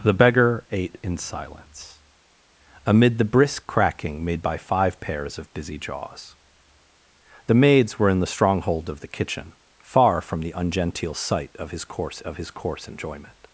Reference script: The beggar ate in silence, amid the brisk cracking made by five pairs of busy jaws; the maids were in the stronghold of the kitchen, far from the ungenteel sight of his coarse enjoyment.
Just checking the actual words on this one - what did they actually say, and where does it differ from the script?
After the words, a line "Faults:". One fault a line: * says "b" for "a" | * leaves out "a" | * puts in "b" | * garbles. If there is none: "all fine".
The beggar ate in silence, amid the brisk cracking made by five pairs of busy jaws; the maids were in the stronghold of the kitchen, far from the ungenteel sight of his coarse of his coarse enjoyment.
Faults:
* puts in "of his coarse"